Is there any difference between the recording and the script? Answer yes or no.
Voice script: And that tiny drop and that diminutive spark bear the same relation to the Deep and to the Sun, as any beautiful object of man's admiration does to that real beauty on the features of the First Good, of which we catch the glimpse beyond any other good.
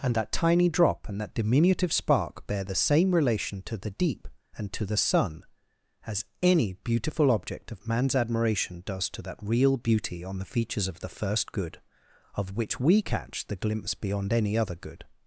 no